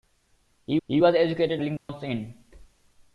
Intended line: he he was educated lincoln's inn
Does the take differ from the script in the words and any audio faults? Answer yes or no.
yes